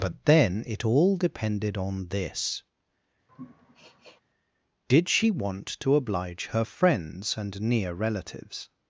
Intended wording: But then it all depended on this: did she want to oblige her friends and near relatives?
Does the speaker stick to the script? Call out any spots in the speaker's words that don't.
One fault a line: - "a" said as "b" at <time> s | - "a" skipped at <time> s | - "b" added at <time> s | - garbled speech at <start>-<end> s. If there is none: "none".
none